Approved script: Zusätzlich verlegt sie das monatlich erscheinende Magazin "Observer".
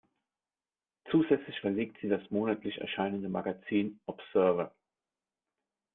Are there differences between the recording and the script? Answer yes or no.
no